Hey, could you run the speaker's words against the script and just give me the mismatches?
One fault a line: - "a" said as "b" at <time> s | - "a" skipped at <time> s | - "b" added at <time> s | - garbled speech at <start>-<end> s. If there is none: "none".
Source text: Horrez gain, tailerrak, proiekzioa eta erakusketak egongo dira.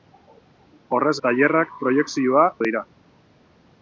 - "gain" skipped at 1.1 s
- "eta erakusketak egongo" skipped at 2.4 s